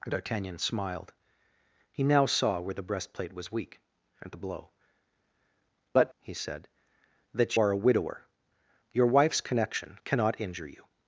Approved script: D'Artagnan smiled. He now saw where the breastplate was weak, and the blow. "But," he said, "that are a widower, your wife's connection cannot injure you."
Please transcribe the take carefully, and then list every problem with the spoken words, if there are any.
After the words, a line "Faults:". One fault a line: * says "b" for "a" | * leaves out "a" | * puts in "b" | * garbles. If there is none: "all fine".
D'Artagnan smiled. He now saw where the breastplate was weak, and the blow. "But," he said, "that are a widower, your wife's connection cannot injure you."
Faults:
all fine